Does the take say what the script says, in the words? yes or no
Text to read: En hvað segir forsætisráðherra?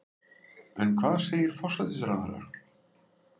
yes